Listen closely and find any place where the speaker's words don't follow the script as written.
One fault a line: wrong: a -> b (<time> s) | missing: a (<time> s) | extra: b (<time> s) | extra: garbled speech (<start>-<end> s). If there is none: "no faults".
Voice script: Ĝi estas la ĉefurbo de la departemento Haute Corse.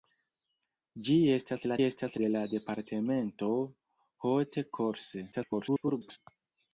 wrong: ĉefurbo -> estas (1.8 s)
extra: garbled speech (5.3-6.2 s)